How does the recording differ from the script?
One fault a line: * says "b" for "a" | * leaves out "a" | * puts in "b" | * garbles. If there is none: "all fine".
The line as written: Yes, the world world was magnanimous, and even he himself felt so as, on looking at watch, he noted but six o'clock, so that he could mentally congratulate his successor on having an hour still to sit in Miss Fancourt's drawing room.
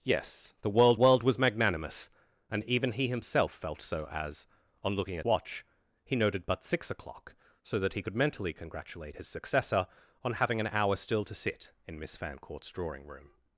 all fine